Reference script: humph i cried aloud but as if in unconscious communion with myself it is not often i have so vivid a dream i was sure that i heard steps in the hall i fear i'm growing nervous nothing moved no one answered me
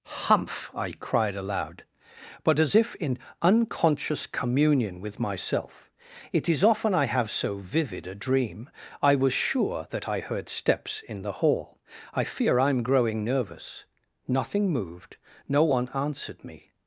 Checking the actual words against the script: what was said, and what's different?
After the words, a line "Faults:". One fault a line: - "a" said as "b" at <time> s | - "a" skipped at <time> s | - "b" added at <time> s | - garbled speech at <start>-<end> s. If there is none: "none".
humph i cried aloud but as if in unconscious communion with myself it is often i have so vivid a dream i was sure that i heard steps in the hall i fear i'm growing nervous nothing moved no one answered me
Faults:
- "not" skipped at 6.6 s